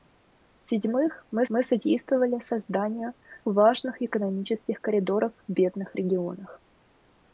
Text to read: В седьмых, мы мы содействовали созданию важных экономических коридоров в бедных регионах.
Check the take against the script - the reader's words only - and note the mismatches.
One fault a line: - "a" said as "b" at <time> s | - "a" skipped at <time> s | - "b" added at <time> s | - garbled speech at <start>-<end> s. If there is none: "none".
none